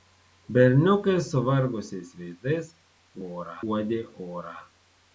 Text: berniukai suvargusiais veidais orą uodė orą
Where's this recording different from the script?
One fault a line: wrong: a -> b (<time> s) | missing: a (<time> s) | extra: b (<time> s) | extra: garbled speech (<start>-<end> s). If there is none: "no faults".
no faults